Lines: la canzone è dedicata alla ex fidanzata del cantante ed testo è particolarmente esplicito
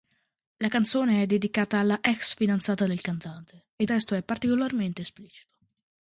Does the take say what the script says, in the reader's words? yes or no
yes